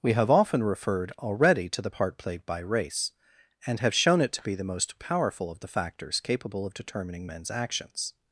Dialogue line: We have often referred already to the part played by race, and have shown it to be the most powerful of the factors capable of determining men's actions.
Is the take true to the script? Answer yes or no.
yes